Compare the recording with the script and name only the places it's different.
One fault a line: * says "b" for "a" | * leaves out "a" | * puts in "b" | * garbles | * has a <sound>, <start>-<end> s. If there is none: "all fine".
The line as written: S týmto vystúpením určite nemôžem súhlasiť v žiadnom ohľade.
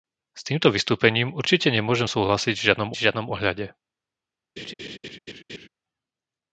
* puts in "v žiadnom"
* has a laugh, 4.6-5.7 s